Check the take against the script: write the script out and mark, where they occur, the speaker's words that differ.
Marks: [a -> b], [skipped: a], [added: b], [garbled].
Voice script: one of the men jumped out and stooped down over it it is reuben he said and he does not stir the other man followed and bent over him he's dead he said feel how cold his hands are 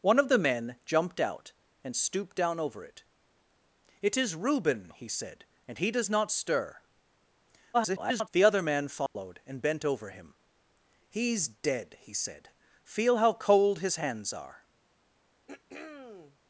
one of the men jumped out and stooped down over it it is reuben he said and he does not stir [garbled] the other man followed and bent over him he's dead he said feel how cold his hands are